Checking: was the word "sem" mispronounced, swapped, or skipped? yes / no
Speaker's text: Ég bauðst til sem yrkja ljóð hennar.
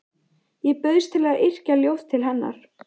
yes